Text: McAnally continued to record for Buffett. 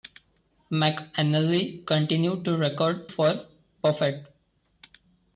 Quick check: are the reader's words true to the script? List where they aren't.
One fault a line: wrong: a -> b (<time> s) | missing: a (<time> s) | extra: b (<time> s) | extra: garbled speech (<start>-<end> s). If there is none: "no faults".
no faults